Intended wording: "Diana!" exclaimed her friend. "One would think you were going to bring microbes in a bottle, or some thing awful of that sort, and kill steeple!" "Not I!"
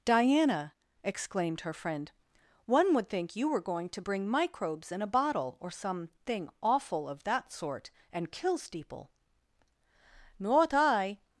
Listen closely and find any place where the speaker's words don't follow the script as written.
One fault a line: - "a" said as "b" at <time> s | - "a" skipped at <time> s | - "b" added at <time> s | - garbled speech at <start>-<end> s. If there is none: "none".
none